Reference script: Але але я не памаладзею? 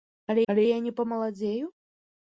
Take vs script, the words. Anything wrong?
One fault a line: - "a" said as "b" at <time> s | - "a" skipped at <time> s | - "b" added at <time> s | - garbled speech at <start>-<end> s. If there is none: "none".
none